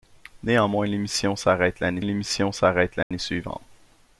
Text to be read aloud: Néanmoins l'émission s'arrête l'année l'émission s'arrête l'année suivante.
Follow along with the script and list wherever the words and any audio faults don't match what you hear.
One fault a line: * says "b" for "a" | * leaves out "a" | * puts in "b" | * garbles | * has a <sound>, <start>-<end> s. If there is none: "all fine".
* has a dropout, 3.0-3.1 s